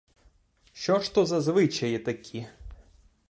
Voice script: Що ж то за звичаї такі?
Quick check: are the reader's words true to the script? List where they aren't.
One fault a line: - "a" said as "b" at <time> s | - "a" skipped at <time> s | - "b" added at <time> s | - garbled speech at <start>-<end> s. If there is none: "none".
none